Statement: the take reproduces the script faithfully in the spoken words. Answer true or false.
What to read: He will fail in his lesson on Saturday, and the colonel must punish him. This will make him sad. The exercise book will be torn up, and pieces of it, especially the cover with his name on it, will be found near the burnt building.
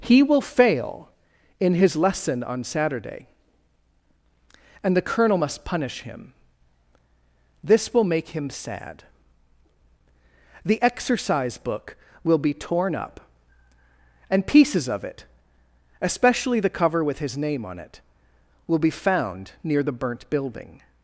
true